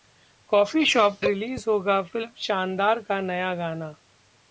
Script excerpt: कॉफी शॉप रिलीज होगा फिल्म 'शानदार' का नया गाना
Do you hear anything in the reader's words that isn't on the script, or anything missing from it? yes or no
no